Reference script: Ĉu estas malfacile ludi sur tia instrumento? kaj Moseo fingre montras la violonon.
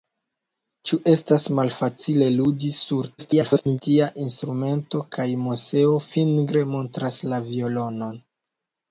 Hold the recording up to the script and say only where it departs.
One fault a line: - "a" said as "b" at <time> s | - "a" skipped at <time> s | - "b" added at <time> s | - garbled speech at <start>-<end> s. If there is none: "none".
- garbled speech at 3.2-3.8 s